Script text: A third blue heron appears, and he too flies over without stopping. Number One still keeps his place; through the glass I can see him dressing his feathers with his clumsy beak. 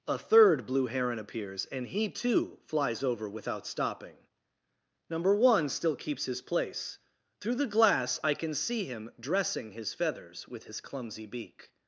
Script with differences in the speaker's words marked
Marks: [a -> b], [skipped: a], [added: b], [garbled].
A third blue heron appears, and he too flies over without stopping. Number One still keeps his place; through the glass I can see him dressing his feathers with his clumsy beak.